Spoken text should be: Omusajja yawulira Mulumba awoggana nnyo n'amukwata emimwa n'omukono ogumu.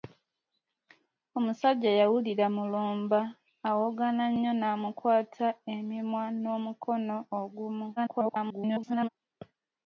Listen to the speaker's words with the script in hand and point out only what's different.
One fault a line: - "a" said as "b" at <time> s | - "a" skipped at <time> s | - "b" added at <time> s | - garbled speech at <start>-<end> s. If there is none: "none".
- garbled speech at 8.0-9.1 s